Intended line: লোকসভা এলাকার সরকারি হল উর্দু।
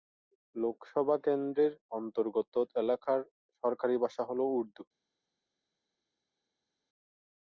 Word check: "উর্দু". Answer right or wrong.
right